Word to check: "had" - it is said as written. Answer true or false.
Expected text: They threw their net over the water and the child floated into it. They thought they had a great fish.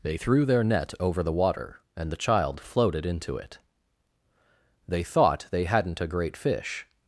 false